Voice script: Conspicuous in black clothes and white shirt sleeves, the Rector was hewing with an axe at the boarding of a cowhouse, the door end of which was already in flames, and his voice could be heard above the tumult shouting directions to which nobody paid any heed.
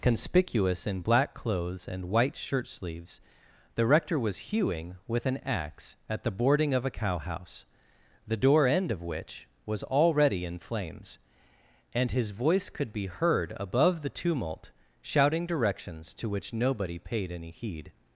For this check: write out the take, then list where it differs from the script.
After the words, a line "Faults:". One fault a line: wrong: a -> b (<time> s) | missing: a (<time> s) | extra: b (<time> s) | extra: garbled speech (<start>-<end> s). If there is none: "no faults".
Conspicuous in black clothes and white shirt sleeves, the Rector was hewing with an axe at the boarding of a cowhouse, the door end of which was already in flames, and his voice could be heard above the tumult shouting directions to which nobody paid any heed.
Faults:
no faults